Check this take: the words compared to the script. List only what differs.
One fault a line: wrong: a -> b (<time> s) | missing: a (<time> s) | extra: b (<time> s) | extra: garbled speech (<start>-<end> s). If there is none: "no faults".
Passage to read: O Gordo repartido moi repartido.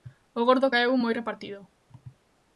wrong: repartido -> caeu (0.7 s)